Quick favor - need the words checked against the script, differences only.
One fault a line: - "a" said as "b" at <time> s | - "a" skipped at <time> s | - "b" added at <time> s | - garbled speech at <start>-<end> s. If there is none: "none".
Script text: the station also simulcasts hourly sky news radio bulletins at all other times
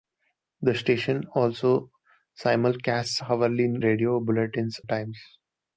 - "sky news" skipped at 3.7 s
- "at all other" skipped at 4.8 s